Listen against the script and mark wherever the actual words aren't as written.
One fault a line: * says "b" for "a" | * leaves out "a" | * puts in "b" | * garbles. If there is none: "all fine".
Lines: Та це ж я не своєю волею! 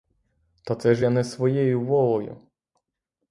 all fine